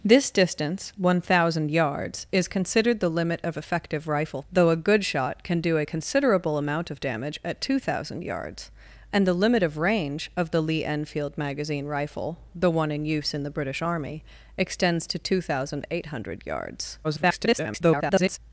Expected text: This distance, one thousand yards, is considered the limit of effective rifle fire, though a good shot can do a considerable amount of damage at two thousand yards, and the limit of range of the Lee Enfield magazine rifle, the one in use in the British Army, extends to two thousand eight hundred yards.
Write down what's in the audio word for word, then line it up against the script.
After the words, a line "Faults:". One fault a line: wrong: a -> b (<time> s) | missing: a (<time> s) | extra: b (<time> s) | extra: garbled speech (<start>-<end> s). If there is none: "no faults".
This distance, one thousand yards, is considered the limit of effective rifle though a good shot can do a considerable amount of damage at two thousand yards, and the limit of range of the Lee Enfield magazine rifle, the one in use in the British Army, extends to two thousand eight hundred yards. [garbled]
Faults:
missing: fire (4.4 s)
extra: garbled speech (17.0-18.4 s)